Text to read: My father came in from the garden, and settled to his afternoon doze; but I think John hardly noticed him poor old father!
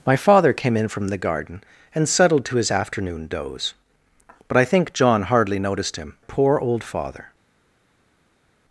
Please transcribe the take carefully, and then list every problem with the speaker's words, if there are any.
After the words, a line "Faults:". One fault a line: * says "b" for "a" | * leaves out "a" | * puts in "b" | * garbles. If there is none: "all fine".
My father came in from the garden, and settled to his afternoon doze; but I think John hardly noticed him poor old father!
Faults:
all fine